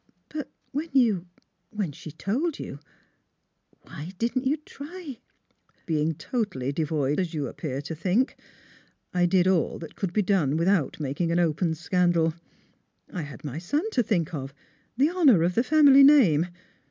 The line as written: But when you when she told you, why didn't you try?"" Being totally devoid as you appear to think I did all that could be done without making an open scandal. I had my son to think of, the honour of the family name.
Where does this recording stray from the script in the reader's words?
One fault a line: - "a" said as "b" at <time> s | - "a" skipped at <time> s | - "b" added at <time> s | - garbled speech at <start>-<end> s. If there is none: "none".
none